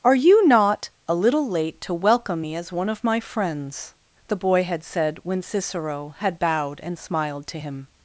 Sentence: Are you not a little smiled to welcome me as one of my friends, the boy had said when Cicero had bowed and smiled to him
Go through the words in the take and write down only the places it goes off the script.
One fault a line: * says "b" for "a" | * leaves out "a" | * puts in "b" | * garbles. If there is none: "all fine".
* says "late" for "smiled"